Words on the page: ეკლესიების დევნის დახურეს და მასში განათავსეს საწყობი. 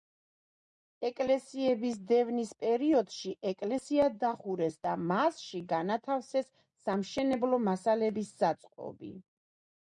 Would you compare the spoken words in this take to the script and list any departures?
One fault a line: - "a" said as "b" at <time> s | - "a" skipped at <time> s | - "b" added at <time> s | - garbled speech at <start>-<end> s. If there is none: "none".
- "პერიოდში ეკლესია" added at 2.6 s
- "სამშენებლო მასალების" added at 6.9 s